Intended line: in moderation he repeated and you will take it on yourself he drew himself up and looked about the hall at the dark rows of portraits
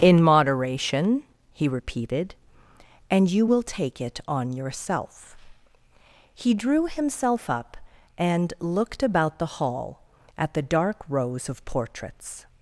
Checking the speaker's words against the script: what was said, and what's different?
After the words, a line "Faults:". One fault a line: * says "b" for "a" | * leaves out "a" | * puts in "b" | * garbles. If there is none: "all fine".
in moderation he repeated and you will take it on yourself he drew himself up and looked about the hall at the dark rows of portraits
Faults:
all fine